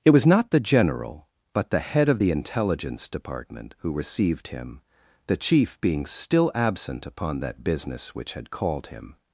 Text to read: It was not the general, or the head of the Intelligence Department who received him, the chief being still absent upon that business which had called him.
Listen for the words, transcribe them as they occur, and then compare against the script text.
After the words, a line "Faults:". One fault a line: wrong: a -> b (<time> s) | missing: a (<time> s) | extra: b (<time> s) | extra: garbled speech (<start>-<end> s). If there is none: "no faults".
It was not the general, but the head of the Intelligence Department who received him, the chief being still absent upon that business which had called him.
Faults:
wrong: or -> but (1.5 s)